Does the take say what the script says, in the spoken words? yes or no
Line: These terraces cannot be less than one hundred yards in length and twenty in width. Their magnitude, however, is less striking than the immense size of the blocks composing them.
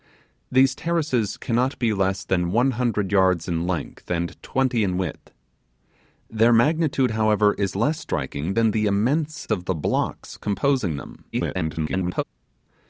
no